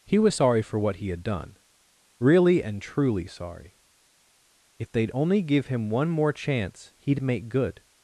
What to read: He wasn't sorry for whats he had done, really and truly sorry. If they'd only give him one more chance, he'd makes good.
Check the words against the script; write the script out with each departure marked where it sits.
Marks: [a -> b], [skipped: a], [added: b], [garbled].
He [wasn't -> was] sorry for [whats -> what] he had done, really and truly sorry. If they'd only give him one more chance, he'd [makes -> make] good.